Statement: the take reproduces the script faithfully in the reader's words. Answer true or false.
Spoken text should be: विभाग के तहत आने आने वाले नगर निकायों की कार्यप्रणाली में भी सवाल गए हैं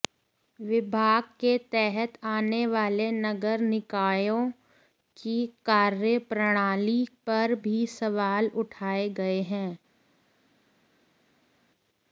false